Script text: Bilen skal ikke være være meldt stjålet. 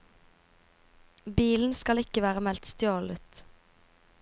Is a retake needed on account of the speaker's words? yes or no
yes